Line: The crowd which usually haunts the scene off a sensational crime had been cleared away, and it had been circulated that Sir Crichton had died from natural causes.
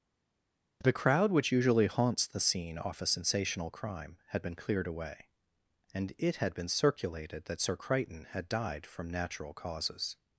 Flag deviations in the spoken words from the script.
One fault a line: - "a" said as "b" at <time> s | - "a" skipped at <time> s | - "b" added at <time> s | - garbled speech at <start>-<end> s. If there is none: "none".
none